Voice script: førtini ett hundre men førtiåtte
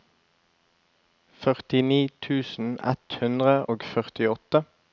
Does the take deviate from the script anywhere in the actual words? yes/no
yes